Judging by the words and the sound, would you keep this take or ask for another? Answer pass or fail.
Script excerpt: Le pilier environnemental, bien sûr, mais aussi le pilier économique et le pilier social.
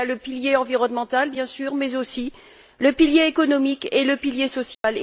fail